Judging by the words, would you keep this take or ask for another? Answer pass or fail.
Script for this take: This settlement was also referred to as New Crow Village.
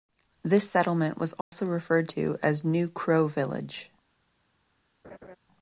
pass